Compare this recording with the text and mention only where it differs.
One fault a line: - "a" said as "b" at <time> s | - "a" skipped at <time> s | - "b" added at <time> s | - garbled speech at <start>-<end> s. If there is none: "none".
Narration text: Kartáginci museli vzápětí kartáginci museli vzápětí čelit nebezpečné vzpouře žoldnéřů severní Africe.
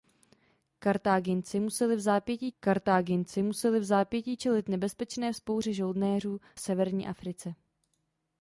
none